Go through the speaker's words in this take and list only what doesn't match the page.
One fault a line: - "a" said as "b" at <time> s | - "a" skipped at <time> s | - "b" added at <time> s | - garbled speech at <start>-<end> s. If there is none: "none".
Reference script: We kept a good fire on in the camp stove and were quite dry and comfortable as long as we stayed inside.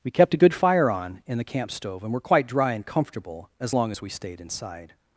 none